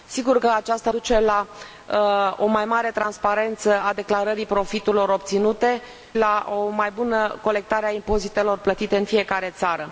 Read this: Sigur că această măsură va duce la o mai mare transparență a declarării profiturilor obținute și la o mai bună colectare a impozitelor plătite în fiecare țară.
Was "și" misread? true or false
true